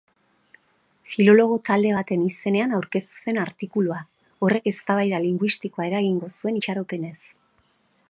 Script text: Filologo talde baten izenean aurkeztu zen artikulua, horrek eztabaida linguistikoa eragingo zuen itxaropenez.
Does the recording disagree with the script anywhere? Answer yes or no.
no